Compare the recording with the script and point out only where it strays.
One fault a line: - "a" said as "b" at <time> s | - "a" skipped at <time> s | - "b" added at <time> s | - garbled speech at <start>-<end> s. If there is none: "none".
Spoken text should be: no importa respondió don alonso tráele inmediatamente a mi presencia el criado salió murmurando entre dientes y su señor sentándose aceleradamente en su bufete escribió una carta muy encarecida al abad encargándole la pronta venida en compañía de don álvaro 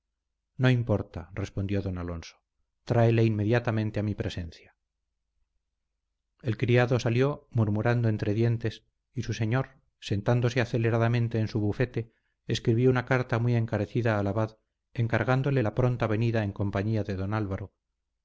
none